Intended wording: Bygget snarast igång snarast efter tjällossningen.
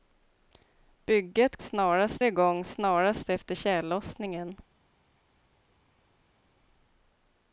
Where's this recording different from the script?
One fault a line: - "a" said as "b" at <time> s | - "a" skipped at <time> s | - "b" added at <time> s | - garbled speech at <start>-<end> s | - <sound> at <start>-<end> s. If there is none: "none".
none